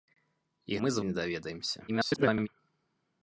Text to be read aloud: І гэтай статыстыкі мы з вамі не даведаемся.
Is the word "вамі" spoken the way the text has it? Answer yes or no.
no